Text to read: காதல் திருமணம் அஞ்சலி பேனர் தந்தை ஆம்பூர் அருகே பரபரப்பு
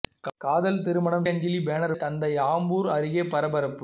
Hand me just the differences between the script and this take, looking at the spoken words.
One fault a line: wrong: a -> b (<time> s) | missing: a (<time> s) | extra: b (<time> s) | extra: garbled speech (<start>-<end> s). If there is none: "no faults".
no faults